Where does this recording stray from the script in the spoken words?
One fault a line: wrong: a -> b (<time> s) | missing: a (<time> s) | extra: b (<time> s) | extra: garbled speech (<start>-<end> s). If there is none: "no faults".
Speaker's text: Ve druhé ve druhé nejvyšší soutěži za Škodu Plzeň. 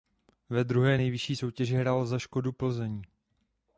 missing: ve druhé (1.0 s)
extra: hrál (1.8 s)